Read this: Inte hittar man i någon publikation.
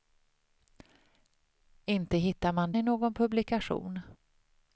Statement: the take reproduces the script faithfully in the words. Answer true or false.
true